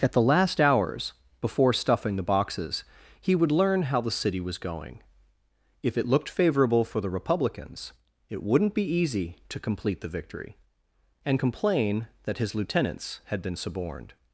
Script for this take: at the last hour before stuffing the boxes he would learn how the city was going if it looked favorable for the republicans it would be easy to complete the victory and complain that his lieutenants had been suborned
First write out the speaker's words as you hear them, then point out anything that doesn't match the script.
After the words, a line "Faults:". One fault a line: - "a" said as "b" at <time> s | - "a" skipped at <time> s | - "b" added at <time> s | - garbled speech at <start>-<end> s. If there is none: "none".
at the last hours before stuffing the boxes he would learn how the city was going if it looked favorable for the republicans it wouldn't be easy to complete the victory and complain that his lieutenants had been suborned
Faults:
- "hour" said as "hours" at 0.6 s
- "would" said as "wouldn't" at 8.4 s